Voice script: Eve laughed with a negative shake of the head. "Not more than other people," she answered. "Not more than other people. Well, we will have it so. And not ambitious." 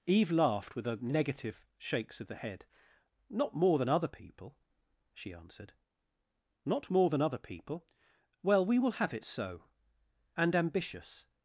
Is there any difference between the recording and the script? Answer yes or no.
yes